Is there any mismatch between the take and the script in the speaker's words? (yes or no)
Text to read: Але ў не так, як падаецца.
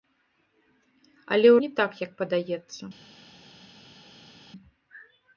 no